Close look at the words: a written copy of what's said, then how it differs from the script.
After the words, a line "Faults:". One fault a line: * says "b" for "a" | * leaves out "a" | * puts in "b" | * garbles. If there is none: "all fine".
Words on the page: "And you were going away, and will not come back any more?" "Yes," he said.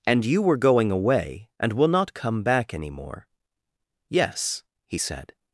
"And you were going away, and will not come back any more?" "Yes," he said.
Faults:
all fine